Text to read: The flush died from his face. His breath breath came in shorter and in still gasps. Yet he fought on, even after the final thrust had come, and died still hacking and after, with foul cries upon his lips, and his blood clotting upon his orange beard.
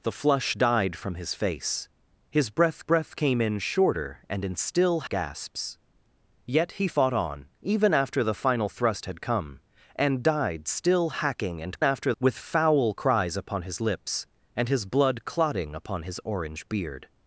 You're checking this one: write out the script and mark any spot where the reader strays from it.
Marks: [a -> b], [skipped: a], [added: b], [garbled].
The flush died from his face. His breath breath came in shorter and in still gasps. Yet he fought on, even after the final thrust had come, and died still hacking and after, with foul cries upon his lips, and his blood clotting upon his orange beard.